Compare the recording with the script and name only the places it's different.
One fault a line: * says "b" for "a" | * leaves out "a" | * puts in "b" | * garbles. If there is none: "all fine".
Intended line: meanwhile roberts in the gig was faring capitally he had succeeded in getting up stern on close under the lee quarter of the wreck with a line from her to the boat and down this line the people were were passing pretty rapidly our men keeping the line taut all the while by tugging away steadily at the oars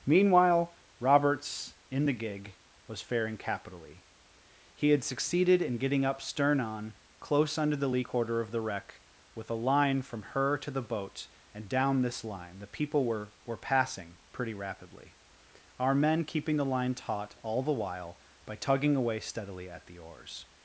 all fine